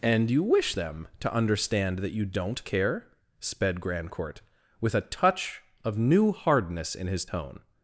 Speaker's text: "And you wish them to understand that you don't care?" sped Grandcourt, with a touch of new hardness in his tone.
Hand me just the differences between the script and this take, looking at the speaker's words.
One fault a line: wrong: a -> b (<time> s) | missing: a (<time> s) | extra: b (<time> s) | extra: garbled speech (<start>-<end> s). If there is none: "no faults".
no faults